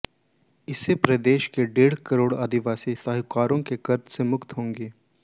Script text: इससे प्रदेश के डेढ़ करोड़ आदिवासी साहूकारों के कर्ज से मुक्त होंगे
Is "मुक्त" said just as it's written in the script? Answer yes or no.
yes